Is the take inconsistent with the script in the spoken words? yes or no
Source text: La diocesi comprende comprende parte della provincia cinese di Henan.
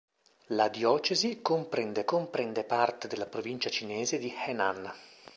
no